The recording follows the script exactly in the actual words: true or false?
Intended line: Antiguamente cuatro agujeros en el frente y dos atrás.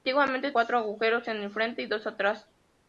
true